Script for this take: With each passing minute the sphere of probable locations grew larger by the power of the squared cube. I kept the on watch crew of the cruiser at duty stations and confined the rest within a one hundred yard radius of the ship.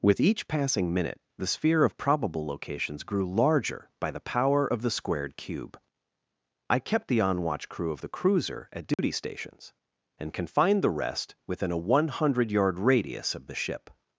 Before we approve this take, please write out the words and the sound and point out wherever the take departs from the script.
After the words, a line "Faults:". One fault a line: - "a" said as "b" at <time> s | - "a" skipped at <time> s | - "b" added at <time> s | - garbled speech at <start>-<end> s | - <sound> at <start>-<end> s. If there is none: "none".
With each passing minute the sphere of probable locations grew larger by the power of the squared cube. I kept the on watch crew of the cruiser at duty stations and confined the rest within a one hundred yard radius of the ship.
Faults:
- dropout at 8.9-9.0 s